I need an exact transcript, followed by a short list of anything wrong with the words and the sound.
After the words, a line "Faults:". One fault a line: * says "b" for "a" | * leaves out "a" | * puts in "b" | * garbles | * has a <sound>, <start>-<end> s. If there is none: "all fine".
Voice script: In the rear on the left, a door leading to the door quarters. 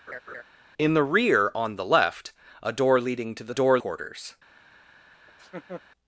In the rear on the left, a door leading to the door quarters.
Faults:
* has a laugh, 0.1-0.4 s
* has a laugh, 5.3-5.8 s